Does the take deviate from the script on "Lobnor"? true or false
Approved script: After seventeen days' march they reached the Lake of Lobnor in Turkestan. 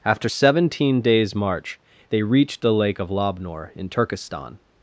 false